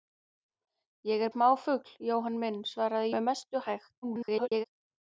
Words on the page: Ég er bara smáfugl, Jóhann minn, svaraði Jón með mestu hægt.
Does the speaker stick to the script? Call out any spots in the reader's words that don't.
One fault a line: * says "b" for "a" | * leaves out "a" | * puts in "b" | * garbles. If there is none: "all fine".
* leaves out "bara"
* leaves out "Jón"
* garbles